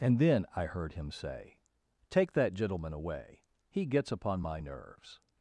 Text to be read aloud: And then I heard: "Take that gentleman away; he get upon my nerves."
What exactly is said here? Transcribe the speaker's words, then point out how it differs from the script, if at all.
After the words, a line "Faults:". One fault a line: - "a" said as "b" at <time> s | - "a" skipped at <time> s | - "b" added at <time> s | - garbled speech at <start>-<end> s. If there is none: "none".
And then I heard him say: "Take that gentleman away; he gets upon my nerves."
Faults:
- "him say" added at 0.9 s
- "get" said as "gets" at 3.9 s